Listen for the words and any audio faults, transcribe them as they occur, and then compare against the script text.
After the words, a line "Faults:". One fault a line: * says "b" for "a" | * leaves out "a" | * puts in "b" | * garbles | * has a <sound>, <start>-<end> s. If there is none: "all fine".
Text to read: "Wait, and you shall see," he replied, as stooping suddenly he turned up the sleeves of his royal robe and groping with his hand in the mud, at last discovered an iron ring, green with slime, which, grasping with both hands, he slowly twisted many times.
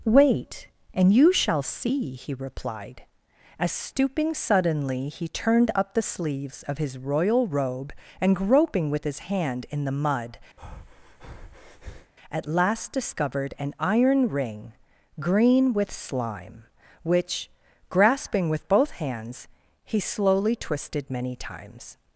"Wait, and you shall see," he replied, as stooping suddenly he turned up the sleeves of his royal robe and groping with his hand in the mud, at last discovered an iron ring, green with slime, which, grasping with both hands, he slowly twisted many times.
Faults:
* has a breath, 10.6-12.1 s